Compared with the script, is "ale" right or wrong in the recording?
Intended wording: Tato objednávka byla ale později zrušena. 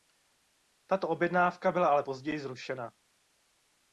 right